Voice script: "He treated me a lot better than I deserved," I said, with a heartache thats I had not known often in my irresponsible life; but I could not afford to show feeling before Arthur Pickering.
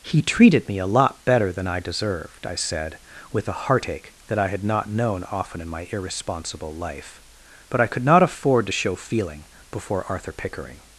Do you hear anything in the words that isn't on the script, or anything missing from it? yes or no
yes